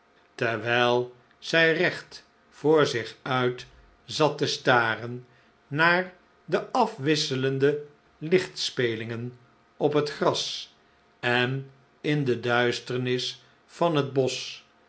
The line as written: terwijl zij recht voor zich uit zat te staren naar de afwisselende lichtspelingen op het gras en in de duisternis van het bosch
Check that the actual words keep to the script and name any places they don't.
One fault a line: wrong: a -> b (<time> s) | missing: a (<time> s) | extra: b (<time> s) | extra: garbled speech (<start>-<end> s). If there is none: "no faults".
no faults